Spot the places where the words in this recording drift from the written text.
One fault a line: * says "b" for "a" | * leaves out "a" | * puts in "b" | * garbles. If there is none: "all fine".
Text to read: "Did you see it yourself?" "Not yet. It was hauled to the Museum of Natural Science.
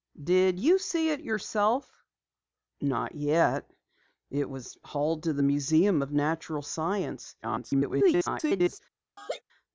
* garbles